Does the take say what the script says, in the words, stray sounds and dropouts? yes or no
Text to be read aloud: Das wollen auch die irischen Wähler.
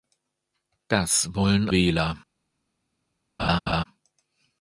no